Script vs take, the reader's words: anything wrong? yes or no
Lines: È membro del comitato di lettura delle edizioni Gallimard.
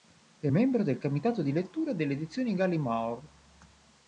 no